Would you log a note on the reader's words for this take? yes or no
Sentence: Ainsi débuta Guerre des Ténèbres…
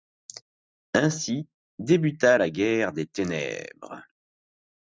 yes